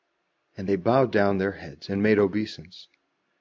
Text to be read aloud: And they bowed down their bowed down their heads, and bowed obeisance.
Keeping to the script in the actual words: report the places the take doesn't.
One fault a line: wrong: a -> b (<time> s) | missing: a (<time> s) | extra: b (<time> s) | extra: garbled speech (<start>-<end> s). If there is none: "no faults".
missing: bowed down their (1.5 s)
wrong: bowed -> made (2.0 s)